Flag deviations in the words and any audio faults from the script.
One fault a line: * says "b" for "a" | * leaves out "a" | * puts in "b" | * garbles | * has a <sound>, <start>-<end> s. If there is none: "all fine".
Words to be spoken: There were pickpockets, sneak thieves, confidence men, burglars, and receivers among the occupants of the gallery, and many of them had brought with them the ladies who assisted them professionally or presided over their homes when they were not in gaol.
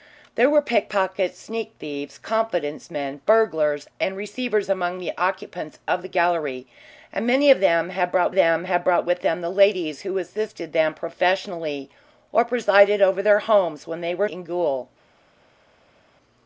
* puts in "them had brought"
* leaves out "not"